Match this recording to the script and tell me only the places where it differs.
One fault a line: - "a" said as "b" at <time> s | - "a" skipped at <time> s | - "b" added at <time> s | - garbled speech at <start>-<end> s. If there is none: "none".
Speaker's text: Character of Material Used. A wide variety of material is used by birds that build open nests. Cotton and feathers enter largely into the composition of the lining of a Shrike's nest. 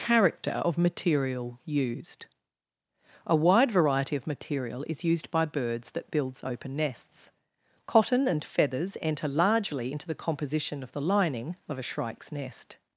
- "build" said as "builds" at 6.1 s